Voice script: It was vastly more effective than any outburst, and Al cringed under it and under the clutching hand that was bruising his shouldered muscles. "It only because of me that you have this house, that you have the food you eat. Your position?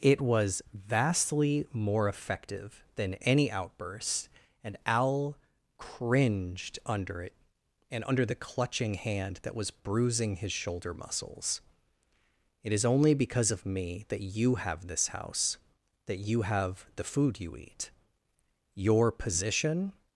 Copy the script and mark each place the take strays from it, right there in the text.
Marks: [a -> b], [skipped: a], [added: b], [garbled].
It was vastly more effective than any outburst, and Al cringed under it and under the clutching hand that was bruising his [shouldered -> shoulder] muscles. "It [added: is] only because of me that you have this house, that you have the food you eat. Your position?